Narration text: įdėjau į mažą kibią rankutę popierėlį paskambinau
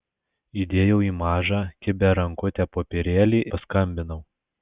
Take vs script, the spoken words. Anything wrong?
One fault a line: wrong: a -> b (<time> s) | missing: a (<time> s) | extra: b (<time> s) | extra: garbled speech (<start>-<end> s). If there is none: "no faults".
no faults